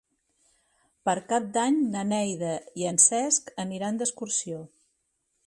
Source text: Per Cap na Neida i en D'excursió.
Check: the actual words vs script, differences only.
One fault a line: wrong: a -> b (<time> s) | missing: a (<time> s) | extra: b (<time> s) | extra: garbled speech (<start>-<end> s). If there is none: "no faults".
extra: d'Any (1.6 s)
extra: Cesc aniran (3.1 s)